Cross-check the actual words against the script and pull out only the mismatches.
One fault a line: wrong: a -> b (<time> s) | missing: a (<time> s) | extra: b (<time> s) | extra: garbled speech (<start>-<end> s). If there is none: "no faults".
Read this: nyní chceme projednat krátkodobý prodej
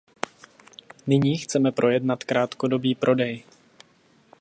no faults